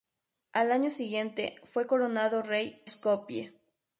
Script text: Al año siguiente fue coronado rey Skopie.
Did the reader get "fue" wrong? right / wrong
right